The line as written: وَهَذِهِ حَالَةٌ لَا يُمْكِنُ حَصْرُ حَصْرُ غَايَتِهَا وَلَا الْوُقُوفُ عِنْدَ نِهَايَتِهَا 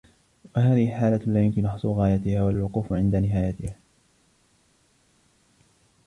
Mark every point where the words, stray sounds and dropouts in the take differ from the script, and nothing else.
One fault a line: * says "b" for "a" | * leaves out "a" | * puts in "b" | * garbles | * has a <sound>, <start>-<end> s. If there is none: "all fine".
* leaves out "حَصْرُ"